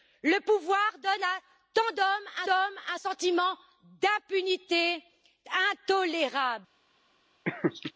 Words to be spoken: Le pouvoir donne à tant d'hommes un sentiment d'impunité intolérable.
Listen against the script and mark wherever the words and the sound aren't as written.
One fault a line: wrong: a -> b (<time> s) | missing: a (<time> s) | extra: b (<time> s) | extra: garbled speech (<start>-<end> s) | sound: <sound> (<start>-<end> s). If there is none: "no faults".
extra: d'hommes (2.4 s)
sound: laugh (7.5-7.9 s)